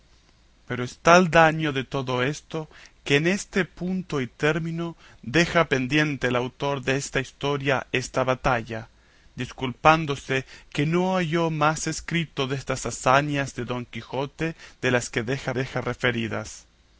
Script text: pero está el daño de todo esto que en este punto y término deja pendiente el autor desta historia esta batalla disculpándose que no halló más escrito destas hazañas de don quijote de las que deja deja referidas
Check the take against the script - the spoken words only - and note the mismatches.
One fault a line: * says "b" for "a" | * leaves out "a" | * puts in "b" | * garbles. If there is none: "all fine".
all fine